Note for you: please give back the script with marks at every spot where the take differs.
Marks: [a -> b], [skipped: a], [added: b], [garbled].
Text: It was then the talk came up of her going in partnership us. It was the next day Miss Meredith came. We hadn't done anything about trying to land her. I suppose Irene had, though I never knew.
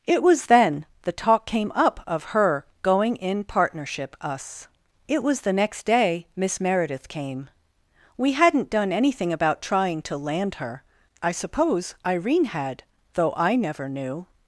It was then the talk came up of her going in partnership us. It was the next day Miss Meredith came. We hadn't done anything about trying to land her. I suppose Irene had, though I never knew.